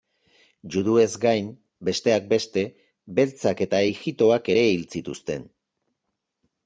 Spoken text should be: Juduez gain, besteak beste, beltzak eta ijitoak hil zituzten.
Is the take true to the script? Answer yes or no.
no